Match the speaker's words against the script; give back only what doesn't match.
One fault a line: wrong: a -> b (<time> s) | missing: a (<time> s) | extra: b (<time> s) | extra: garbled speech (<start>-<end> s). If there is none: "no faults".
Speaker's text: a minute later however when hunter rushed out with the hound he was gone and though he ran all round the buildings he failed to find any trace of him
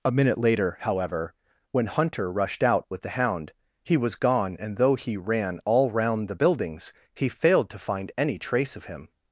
no faults